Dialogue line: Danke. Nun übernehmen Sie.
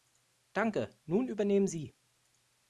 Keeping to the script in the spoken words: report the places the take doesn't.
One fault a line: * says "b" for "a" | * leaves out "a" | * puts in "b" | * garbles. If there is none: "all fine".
all fine